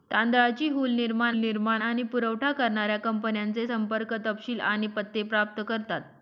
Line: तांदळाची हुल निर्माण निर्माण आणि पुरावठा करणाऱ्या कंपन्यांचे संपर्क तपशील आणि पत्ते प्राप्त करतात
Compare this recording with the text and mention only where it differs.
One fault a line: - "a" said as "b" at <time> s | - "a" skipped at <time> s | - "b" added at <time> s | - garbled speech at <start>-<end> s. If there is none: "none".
none